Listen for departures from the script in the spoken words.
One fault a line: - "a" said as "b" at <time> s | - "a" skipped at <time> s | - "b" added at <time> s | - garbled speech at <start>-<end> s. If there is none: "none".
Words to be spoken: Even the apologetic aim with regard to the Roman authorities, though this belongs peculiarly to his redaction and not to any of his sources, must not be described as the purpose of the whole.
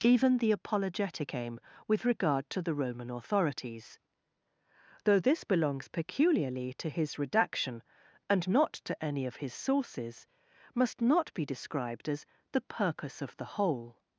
none